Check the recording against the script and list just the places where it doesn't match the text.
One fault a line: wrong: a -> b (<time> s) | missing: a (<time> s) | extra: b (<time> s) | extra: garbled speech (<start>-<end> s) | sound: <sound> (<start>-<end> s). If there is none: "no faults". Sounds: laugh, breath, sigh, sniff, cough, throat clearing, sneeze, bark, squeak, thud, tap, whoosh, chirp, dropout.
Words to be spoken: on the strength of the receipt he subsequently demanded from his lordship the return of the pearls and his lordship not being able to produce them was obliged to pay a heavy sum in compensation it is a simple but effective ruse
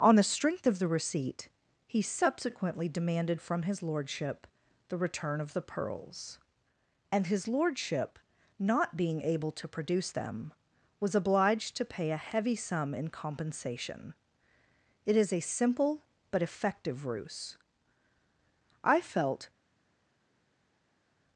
extra: i felt (18.8 s)